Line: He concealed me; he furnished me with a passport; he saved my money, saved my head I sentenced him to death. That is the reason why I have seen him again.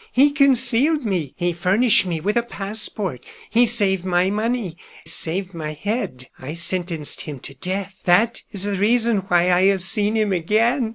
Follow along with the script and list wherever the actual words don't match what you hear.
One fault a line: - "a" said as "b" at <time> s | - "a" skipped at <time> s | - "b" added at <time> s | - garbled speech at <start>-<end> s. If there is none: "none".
none